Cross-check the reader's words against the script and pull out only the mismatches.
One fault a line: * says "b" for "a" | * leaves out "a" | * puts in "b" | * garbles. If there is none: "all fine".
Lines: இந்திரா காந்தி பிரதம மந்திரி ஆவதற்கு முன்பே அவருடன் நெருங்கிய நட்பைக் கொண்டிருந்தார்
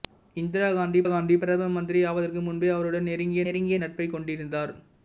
* puts in "காந்தி"
* puts in "நெருங்கிய"